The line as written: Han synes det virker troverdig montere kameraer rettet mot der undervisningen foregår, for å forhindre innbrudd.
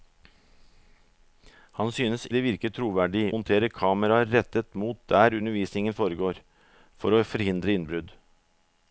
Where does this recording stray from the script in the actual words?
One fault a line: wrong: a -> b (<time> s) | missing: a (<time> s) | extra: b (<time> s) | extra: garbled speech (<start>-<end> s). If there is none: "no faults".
no faults